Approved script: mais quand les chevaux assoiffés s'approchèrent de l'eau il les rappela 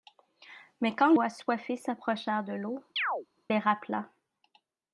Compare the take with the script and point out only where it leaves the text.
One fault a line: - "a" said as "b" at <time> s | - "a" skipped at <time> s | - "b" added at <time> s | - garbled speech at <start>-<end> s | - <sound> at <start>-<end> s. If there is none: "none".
- "les chevaux" skipped at 1.1 s
- "il" skipped at 2.8 s
- chirp at 3.0-3.3 s